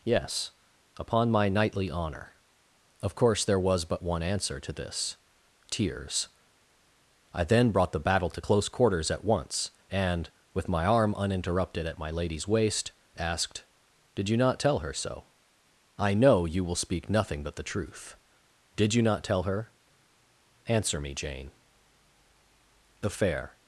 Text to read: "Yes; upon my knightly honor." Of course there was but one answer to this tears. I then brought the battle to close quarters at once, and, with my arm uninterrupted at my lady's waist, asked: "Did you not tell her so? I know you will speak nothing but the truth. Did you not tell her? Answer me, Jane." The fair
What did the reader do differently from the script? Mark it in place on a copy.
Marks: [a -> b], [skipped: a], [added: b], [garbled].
"Yes; upon my knightly honor." Of course there was but one answer to this tears. I then brought the battle to close quarters at once, and, with my arm uninterrupted at my lady's waist, asked: "Did you not tell her so? I know you will speak nothing but the truth. Did you not tell her? Answer me, Jane." The fair